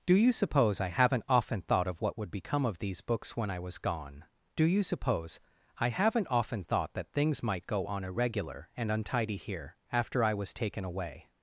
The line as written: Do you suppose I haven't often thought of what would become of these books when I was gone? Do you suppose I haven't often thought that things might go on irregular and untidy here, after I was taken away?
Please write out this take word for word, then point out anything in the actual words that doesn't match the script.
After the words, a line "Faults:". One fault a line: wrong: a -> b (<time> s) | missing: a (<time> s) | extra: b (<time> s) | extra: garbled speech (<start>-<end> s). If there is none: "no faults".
Do you suppose I haven't often thought of what would become of these books when I was gone? Do you suppose I haven't often thought that things might go on irregular and untidy here, after I was taken away?
Faults:
no faults